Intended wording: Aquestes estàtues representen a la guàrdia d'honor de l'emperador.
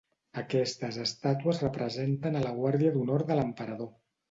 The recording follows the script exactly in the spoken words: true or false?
true